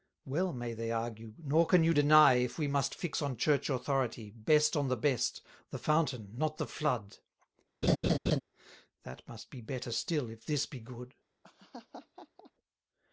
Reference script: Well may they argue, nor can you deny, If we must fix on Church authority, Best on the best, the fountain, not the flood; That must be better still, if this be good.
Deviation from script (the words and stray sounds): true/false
true